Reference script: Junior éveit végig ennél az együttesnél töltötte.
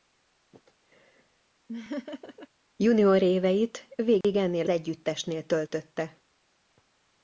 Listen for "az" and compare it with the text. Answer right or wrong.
wrong